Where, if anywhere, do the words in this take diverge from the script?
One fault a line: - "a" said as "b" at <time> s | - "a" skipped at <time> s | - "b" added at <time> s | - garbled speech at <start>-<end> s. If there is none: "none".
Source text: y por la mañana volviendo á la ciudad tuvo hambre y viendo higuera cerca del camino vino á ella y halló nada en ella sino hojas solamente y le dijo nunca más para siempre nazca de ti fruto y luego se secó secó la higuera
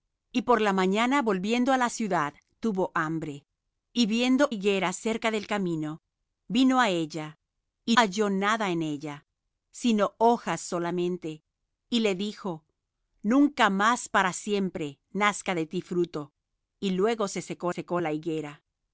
none